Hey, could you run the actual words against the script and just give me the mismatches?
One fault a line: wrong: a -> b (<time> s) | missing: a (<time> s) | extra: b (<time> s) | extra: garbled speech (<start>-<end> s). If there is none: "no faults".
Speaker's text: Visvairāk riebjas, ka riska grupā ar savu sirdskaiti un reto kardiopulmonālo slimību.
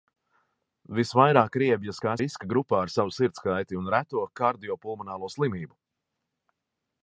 no faults